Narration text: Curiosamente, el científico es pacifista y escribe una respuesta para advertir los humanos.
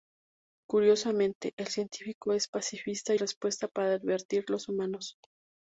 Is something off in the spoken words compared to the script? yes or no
yes